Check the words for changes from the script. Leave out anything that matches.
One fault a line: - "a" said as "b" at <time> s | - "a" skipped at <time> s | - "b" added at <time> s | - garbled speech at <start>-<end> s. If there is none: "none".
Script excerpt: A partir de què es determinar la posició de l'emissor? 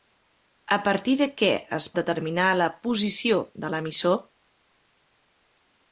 none